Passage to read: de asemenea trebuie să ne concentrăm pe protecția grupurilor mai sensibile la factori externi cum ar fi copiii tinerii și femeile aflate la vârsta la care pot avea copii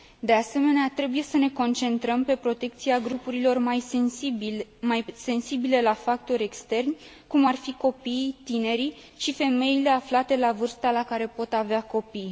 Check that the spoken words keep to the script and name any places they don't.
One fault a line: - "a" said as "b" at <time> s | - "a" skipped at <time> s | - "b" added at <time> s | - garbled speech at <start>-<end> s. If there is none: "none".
none